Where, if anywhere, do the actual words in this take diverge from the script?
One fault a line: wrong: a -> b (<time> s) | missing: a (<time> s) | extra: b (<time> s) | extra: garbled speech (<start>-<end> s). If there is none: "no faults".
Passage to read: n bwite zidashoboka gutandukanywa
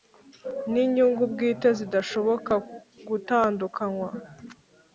extra: inyungu (0.8 s)